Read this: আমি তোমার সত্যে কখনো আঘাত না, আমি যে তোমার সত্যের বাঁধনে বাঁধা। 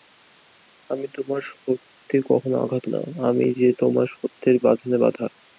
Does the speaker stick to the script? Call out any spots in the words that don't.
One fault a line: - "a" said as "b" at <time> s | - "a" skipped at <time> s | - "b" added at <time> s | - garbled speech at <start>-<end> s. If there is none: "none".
none